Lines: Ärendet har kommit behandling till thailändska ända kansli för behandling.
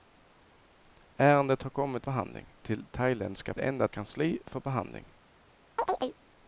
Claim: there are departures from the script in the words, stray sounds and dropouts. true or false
true